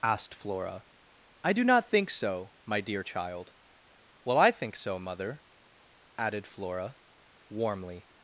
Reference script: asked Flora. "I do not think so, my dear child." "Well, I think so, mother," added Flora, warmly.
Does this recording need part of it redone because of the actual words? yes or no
no